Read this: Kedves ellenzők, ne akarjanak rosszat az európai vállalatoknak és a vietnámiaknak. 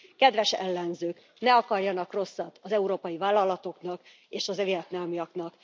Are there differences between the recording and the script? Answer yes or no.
no